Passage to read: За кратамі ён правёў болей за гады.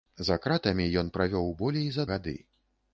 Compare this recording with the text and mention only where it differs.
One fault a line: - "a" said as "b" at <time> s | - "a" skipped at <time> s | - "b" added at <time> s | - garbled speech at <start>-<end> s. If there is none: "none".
none